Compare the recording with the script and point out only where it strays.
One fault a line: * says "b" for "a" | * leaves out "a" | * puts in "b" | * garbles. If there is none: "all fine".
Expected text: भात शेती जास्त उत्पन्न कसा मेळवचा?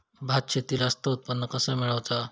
all fine